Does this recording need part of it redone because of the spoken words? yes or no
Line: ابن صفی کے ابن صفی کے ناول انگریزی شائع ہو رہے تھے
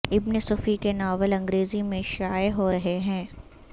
yes